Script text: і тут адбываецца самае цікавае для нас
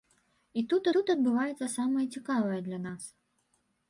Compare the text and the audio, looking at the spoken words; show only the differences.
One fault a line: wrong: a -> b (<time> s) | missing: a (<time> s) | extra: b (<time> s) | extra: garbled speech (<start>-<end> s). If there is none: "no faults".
extra: тут (0.9 s)